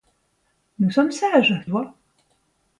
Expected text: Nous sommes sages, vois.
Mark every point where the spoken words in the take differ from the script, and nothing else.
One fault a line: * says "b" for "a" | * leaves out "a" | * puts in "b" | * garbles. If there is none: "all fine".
all fine